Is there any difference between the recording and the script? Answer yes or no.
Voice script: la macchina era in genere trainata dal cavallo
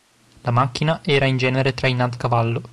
yes